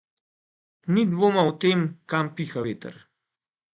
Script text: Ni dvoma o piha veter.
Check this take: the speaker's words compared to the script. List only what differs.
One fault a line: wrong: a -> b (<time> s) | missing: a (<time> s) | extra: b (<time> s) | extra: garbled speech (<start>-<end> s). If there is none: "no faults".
extra: tem kam (1.6 s)